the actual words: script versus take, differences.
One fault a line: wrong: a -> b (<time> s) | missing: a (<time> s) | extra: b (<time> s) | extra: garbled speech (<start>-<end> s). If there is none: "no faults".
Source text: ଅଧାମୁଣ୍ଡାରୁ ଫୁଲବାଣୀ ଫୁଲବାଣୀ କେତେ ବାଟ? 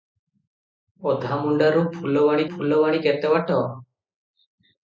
no faults